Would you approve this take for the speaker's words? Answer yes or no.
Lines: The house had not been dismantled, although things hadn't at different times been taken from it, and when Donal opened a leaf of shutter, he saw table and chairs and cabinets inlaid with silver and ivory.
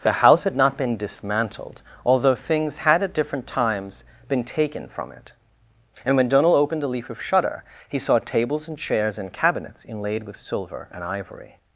no